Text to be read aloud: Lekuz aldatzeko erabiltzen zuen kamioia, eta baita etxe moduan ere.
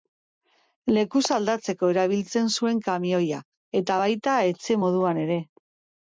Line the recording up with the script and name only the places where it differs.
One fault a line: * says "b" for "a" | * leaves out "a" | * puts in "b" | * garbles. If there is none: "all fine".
all fine